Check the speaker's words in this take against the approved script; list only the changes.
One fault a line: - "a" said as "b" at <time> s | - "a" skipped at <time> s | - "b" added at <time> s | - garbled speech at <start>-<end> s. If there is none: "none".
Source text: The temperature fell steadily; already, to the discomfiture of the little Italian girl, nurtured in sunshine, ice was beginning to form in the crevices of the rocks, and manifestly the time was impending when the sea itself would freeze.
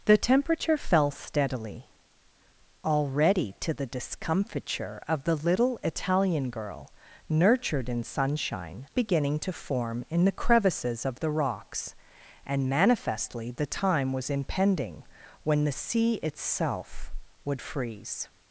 - "ice was" skipped at 8.9 s